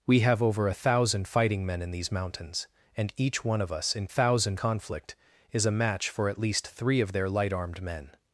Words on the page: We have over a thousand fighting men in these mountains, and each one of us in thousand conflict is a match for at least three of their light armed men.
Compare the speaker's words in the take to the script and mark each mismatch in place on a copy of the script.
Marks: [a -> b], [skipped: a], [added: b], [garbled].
We have over a thousand fighting men in these mountains, and each one of us in thousand conflict is a match for at least three of their light armed men.